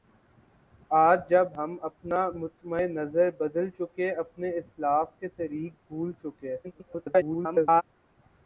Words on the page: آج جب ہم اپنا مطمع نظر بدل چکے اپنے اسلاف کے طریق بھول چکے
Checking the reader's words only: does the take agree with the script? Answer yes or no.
no